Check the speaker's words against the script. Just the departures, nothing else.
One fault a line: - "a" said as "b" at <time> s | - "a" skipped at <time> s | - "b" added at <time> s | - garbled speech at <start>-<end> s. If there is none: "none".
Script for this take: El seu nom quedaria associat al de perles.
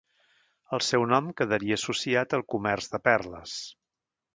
- "comerç" added at 2.6 s